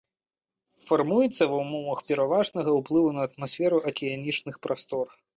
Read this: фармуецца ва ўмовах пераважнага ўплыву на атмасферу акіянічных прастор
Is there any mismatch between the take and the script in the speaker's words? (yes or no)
no